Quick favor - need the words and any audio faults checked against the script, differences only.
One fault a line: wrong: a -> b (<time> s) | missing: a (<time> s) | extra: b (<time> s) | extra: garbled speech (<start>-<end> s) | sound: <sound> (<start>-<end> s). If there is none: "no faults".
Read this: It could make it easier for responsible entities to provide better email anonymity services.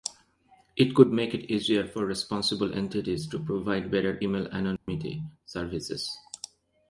sound: dropout (4.8-4.9 s)